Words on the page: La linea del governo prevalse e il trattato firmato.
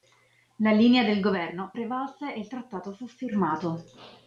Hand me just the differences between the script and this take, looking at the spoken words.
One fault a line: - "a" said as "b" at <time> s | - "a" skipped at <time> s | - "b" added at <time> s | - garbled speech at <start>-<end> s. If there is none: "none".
- "fu" added at 2.9 s